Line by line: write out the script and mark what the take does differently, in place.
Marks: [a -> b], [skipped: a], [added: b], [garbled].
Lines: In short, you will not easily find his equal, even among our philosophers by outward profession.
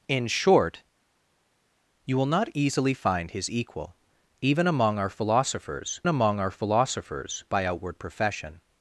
In short, you will not easily find his equal, even among our philosophers [added: among our philosophers] by outward profession.